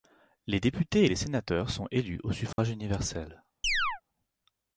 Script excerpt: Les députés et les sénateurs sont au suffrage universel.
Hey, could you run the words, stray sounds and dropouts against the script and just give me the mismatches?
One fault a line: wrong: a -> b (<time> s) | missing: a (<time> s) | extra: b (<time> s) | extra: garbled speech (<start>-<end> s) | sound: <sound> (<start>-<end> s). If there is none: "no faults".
extra: élus (1.9 s)
sound: dropout (2.5-2.6 s)
sound: chirp (3.6-4.0 s)